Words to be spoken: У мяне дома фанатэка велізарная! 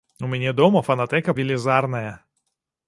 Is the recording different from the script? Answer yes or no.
no